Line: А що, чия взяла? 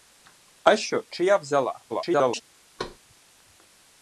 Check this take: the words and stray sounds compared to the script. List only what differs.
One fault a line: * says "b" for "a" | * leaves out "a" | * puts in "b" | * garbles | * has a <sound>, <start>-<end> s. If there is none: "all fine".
* garbles
* has a thud, 2.8-3.0 s